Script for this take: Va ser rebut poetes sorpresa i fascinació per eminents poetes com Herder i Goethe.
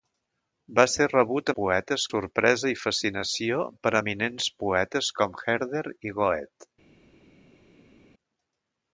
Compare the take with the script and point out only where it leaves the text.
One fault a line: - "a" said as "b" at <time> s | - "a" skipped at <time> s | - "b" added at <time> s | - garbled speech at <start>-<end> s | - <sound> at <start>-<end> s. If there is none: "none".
none